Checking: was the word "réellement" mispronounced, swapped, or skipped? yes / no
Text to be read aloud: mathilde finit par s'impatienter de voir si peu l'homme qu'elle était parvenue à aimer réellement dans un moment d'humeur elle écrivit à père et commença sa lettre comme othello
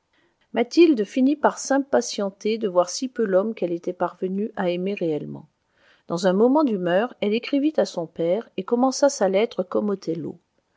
no